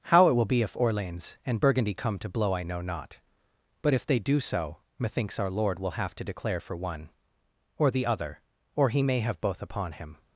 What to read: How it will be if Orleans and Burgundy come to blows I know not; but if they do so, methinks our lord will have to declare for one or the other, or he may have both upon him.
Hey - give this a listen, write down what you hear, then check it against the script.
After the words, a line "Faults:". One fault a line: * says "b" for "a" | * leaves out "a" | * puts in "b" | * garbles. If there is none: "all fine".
How it will be if Orleans and Burgundy come to blow I know not; but if they do so, methinks our lord will have to declare for one or the other, or he may have both upon him.
Faults:
* says "blow" for "blows"